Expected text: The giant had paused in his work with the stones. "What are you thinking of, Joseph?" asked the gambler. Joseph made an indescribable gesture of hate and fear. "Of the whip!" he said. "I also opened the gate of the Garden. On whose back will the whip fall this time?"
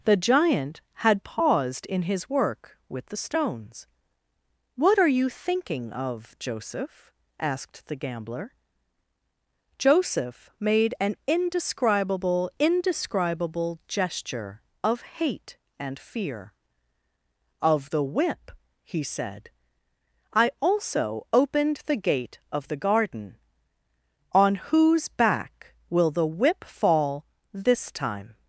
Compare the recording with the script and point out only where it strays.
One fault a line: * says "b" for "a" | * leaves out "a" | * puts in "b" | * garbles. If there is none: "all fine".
* puts in "indescribable"